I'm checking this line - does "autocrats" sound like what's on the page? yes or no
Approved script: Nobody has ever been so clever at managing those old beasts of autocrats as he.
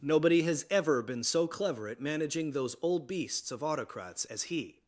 yes